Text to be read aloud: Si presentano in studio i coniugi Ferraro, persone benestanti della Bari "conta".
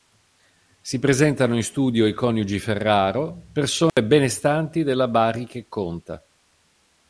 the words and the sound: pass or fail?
fail